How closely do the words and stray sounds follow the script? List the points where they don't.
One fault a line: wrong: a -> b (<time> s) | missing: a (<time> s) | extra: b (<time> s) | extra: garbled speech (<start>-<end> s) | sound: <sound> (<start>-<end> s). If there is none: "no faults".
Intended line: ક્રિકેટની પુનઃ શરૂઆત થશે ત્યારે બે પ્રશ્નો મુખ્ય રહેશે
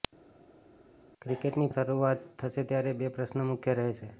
missing: પુનઃ (1.7 s)